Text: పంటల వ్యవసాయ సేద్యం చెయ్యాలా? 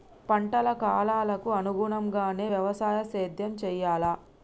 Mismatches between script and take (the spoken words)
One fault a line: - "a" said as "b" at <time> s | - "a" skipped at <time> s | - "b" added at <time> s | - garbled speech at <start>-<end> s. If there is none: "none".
- "కాలాలకు అనుగుణంగానే" added at 0.8 s